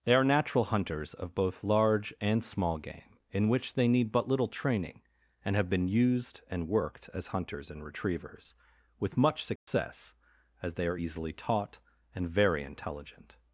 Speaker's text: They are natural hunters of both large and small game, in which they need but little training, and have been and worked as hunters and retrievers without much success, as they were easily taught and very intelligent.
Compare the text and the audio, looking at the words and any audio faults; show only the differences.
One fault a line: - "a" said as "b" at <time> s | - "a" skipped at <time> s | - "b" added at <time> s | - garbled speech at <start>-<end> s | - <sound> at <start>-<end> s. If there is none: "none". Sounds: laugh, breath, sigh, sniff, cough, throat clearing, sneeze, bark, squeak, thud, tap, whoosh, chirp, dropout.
- "used" added at 5.9 s
- "without" said as "with" at 9.0 s
- dropout at 9.6-9.7 s
- "were" said as "are" at 10.9 s